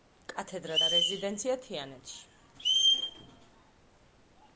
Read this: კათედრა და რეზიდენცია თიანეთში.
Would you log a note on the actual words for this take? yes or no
no